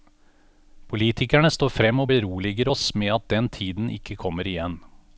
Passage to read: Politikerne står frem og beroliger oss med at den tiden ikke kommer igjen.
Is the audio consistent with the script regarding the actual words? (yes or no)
yes